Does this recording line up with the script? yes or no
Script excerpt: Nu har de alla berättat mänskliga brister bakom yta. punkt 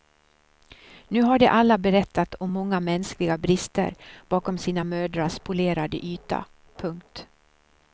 no